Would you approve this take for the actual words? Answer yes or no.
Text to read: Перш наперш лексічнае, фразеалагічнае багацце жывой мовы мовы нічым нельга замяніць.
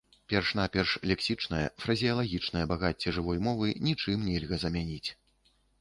no